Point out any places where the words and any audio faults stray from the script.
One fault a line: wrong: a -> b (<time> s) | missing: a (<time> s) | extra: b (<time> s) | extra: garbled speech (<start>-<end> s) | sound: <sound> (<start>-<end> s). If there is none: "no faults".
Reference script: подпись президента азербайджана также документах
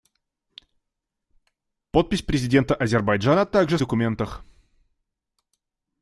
no faults